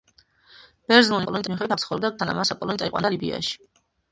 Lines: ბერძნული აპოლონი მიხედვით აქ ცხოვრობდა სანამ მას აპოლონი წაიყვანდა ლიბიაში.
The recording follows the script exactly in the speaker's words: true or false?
true